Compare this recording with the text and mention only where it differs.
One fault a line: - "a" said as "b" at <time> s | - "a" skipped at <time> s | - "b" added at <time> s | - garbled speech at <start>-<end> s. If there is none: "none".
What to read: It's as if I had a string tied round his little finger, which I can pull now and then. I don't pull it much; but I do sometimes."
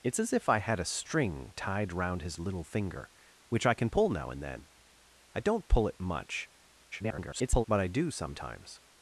- garbled speech at 6.9-7.7 s